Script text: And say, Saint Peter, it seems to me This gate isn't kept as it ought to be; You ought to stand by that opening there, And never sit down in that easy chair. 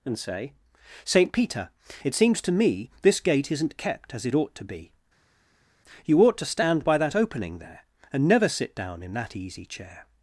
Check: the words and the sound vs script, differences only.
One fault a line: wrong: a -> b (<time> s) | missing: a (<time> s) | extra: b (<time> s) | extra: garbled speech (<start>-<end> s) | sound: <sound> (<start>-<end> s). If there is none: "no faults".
no faults